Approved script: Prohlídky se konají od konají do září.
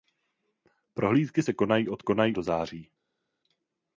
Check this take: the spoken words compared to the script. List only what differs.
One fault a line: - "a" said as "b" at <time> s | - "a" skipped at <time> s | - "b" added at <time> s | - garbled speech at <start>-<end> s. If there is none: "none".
none